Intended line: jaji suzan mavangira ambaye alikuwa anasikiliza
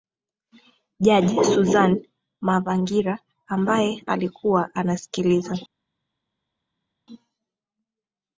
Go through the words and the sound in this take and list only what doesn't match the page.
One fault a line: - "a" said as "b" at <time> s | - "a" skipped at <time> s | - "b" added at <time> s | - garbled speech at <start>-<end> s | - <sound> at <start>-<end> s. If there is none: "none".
none